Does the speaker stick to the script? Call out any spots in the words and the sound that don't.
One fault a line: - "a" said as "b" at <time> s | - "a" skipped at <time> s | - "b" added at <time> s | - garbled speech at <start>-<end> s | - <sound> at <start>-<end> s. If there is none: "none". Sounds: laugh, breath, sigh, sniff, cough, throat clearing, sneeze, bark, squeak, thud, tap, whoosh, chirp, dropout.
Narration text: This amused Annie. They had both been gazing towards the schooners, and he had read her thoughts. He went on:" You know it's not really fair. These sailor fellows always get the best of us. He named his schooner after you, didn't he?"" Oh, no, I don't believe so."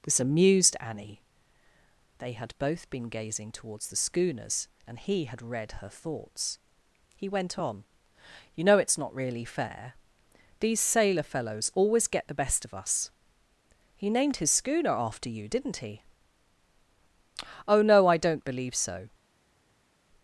none